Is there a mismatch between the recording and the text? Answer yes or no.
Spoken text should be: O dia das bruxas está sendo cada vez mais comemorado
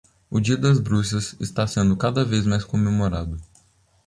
no